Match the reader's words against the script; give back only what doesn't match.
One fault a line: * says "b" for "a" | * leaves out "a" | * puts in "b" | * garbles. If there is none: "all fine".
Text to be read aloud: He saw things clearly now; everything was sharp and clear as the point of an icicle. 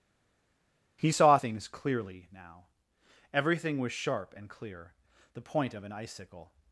* leaves out "as"